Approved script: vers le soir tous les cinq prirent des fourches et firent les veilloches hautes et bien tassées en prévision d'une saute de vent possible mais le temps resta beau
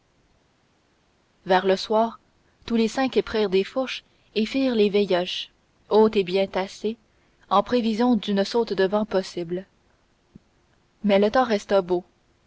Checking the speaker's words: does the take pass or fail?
pass